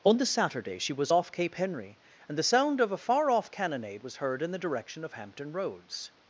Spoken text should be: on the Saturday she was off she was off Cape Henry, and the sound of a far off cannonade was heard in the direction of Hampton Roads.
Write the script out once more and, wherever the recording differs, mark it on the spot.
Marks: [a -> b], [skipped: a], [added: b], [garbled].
on the Saturday she was off [skipped: she was off] Cape Henry, and the sound of a far off cannonade was heard in the direction of Hampton Roads.